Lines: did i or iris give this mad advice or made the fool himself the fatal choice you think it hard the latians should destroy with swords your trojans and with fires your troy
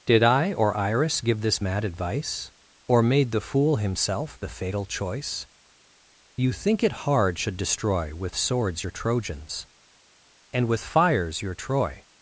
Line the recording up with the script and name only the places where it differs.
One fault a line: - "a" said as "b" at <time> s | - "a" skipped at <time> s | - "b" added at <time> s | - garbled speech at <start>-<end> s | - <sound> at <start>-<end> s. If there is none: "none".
- "the latians" skipped at 7.4 s